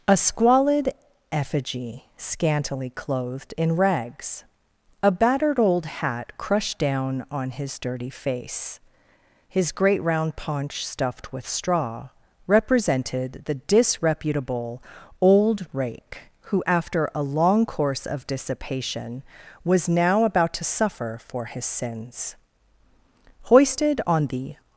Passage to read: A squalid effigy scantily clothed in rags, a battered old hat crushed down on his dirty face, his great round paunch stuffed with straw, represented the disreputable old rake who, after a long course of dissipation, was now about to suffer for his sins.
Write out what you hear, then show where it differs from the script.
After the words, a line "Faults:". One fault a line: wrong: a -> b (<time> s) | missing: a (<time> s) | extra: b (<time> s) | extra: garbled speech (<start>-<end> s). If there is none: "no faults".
A squalid effigy scantily clothed in rags, a battered old hat crushed down on his dirty face, his great round paunch stuffed with straw, represented the disreputable old rake who, after a long course of dissipation, was now about to suffer for his sins. Hoisted on the
Faults:
extra: Hoisted on the (23.4 s)